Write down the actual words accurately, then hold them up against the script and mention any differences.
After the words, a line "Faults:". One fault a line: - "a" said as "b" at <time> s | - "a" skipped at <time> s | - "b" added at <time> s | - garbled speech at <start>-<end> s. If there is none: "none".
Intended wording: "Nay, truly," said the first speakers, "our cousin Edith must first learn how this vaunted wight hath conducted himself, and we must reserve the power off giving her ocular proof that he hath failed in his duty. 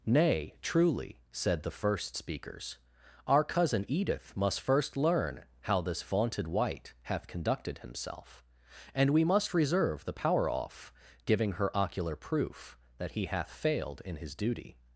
"Nay, truly," said the first speakers, "our cousin Edith must first learn how this vaunted wight hath conducted himself, and we must reserve the power off giving her ocular proof that he hath failed in his duty.
Faults:
none